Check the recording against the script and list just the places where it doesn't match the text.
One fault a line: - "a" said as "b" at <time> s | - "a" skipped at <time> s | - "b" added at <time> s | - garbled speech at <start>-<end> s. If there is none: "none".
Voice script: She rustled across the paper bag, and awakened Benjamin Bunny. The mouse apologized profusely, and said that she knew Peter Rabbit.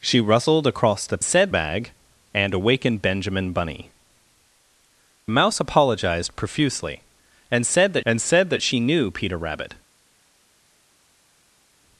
- "paper" said as "said" at 1.2 s
- "The" skipped at 3.9 s
- "and said that" added at 8.1 s